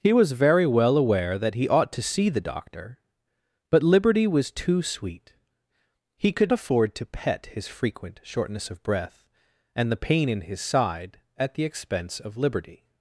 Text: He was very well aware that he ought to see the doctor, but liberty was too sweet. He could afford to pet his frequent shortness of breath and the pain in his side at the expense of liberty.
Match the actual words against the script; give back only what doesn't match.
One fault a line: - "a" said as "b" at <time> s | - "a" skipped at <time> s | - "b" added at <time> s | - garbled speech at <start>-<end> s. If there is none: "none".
none